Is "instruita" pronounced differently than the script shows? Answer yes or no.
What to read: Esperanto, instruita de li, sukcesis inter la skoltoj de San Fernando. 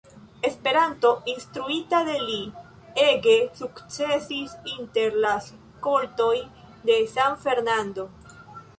no